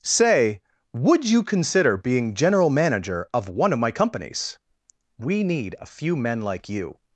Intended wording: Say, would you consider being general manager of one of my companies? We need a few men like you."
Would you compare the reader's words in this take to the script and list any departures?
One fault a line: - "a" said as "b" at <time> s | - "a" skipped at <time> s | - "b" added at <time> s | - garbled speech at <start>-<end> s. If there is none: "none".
none